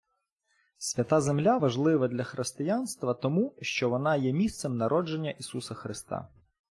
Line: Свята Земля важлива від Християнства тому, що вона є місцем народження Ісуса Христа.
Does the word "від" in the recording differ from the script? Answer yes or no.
yes